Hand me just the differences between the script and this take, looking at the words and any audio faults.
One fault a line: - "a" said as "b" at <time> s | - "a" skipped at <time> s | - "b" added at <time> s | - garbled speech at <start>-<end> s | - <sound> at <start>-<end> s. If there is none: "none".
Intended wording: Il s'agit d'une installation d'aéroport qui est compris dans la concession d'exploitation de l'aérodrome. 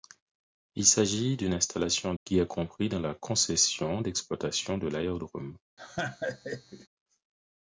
- "d'aéroport" skipped at 2.1 s
- laugh at 5.8-6.9 s